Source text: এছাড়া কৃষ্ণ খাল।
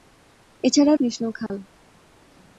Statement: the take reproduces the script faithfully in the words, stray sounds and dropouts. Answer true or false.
false